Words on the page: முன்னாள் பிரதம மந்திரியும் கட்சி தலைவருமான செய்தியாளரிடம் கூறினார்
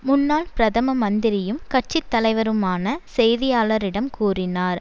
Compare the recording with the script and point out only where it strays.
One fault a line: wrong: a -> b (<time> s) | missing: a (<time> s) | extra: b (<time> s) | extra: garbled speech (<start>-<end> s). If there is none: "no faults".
no faults